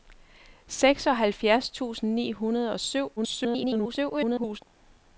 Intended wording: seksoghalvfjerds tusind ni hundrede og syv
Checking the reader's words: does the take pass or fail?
fail